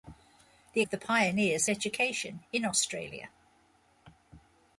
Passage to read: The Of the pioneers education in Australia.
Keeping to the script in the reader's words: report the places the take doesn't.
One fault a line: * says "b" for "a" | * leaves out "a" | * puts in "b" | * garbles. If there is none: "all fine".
all fine